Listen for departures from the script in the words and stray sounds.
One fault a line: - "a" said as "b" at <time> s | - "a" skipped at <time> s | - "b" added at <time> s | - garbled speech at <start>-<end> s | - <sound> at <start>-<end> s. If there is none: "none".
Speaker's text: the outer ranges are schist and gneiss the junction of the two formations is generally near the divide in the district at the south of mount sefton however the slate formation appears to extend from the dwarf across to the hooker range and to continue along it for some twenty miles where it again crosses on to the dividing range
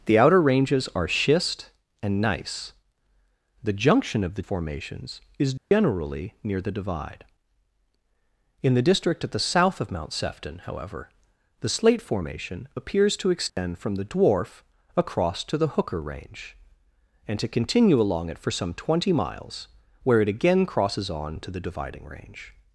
- "two" skipped at 4.4 s
- dropout at 5.6-5.7 s
- dropout at 13.5-13.6 s